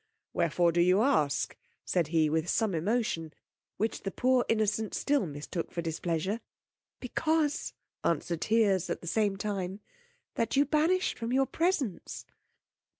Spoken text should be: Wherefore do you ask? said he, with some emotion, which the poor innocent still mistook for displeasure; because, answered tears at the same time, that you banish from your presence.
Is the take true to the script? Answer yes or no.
yes